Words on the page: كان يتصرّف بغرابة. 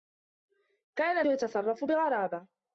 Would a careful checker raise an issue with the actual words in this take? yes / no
no